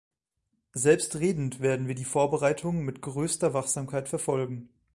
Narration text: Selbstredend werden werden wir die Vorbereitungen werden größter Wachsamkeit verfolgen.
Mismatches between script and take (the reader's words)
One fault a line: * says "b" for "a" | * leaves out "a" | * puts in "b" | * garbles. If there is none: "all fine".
* leaves out "werden"
* says "mit" for "werden"